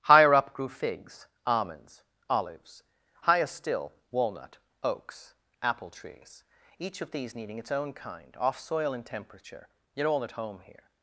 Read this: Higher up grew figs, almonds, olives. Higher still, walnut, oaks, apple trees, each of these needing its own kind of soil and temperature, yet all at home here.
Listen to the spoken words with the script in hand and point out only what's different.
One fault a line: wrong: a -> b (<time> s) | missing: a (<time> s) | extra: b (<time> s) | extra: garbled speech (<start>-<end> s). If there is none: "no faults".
wrong: of -> off (8.4 s)